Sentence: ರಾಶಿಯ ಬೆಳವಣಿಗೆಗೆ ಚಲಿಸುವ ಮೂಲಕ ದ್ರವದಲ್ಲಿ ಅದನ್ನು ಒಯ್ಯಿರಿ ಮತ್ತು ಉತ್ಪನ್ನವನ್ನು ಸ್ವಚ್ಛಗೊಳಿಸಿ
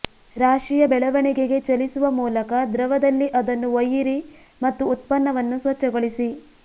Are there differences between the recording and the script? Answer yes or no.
no